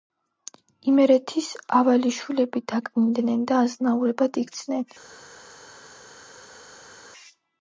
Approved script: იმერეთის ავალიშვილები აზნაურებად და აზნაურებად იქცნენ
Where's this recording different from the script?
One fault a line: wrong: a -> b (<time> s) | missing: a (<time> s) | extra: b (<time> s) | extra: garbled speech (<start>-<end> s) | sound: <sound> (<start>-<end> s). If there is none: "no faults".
wrong: აზნაურებად -> დაკნინდნენ (2.7 s)